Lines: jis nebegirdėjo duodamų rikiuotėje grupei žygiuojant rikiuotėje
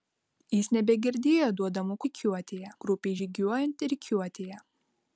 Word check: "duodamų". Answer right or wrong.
right